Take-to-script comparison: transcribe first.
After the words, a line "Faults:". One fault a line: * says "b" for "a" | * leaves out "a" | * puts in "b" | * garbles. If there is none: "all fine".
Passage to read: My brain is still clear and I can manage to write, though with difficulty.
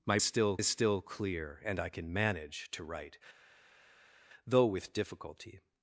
My still is still clear and I can manage to write, though with difficulty.
Faults:
* says "still" for "brain"